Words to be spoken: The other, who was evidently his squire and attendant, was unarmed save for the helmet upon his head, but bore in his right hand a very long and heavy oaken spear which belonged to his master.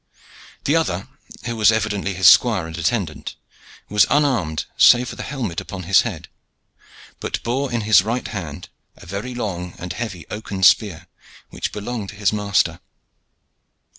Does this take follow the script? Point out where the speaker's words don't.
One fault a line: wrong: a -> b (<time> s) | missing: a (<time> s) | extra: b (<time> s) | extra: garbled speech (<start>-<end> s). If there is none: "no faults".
no faults